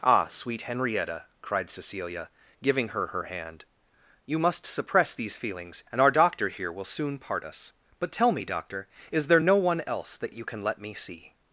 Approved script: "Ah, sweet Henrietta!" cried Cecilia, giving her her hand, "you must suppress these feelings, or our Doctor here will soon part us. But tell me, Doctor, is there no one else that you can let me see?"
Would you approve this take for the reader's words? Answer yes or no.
no